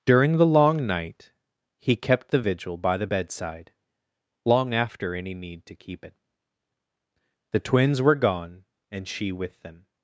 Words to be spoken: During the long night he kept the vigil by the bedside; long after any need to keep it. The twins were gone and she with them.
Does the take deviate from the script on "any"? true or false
false